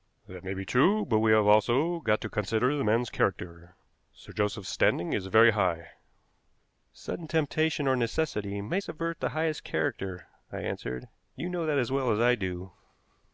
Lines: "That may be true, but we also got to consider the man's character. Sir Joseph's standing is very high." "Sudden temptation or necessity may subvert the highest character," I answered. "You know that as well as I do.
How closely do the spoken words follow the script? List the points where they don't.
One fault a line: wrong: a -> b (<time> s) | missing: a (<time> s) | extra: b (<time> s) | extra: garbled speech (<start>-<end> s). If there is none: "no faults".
extra: have (1.3 s)